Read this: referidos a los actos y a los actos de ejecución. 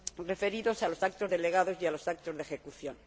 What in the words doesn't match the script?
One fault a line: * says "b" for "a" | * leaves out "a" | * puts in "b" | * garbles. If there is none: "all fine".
* puts in "delegados"